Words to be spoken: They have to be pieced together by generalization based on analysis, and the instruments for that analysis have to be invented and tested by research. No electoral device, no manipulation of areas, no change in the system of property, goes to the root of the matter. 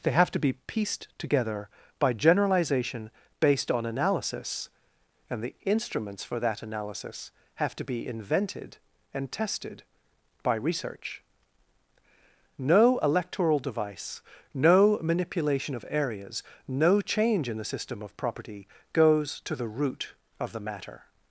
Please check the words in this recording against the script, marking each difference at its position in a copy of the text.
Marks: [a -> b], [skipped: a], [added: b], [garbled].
They have to be pieced together by generalization based on analysis, and the instruments for that analysis have to be invented and tested by research. No electoral device, no manipulation of areas, no change in the system of property, goes to the root of the matter.